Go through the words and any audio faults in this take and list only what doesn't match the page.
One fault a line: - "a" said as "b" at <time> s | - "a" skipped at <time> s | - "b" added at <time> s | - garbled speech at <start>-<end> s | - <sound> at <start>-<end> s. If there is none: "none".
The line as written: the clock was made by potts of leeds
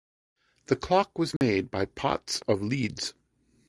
- dropout at 1.4-1.4 s